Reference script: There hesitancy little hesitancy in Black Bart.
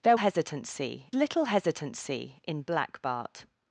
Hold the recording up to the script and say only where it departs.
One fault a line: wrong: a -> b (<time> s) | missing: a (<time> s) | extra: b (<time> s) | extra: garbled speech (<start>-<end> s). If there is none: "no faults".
no faults